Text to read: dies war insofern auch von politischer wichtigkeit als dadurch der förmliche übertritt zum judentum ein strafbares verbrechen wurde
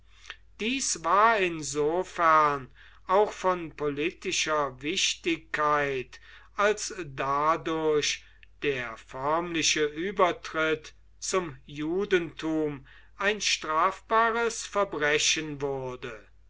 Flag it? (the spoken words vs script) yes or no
no